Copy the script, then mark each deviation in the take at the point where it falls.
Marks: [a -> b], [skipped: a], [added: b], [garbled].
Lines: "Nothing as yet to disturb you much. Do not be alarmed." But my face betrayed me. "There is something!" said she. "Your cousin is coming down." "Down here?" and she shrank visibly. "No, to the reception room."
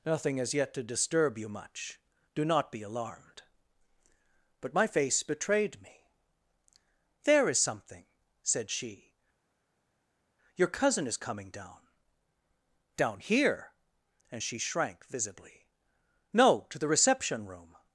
"Nothing as yet to disturb you much. Do not be alarmed." But my face betrayed me. "There is something!" said she. "Your cousin is coming down." "Down here?" and she shrank visibly. "No, to the reception room."